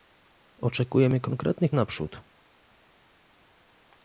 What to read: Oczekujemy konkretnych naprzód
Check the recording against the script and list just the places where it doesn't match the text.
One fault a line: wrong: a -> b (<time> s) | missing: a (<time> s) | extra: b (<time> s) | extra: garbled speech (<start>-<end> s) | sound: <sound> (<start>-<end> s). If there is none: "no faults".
no faults